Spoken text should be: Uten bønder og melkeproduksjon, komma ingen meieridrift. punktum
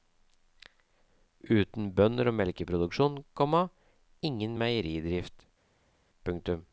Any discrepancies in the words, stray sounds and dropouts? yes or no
no